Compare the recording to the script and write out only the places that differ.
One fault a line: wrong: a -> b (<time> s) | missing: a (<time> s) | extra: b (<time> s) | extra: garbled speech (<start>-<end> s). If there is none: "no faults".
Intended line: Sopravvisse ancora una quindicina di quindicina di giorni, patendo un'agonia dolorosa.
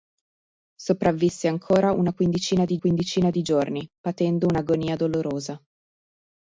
no faults